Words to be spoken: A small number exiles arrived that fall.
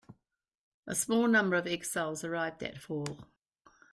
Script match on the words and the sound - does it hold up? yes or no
no